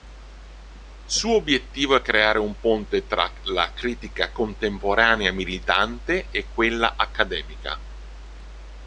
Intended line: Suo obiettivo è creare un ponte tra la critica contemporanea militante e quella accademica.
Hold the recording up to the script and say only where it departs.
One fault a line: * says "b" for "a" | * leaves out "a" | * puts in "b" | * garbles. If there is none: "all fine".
all fine